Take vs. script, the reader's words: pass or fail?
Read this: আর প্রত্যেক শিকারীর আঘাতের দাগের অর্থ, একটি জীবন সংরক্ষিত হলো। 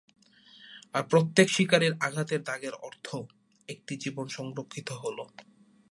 pass